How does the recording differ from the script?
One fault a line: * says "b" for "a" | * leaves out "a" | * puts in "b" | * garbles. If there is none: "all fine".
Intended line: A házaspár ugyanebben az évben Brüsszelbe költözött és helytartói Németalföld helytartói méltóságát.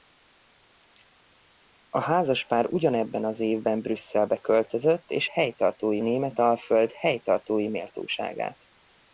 all fine